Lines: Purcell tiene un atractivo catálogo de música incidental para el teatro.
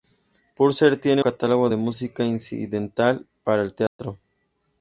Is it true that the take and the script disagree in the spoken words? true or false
true